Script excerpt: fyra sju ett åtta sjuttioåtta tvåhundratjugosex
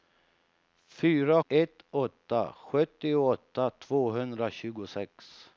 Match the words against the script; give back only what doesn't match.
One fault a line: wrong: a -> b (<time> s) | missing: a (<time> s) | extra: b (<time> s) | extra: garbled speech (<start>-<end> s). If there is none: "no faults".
missing: sju (1.4 s)